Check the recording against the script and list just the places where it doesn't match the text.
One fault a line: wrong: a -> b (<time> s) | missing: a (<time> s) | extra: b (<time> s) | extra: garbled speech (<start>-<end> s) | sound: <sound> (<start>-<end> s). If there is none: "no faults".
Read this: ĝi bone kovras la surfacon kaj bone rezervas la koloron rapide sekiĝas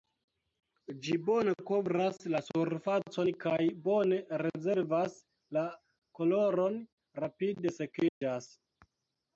sound: dropout (8.1-8.2 s)